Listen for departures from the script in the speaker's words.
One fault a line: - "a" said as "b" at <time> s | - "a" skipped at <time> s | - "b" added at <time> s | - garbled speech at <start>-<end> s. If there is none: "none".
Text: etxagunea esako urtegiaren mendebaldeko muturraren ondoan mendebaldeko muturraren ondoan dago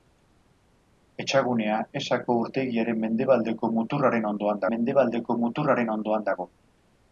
none